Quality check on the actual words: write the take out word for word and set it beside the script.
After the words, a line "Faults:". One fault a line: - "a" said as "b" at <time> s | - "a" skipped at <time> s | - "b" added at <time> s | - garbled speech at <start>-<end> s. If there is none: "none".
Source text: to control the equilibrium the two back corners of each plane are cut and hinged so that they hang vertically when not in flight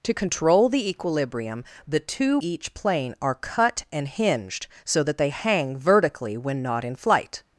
to control the equilibrium the two each plane are cut and hinged so that they hang vertically when not in flight
Faults:
- "back corners of" skipped at 2.4 s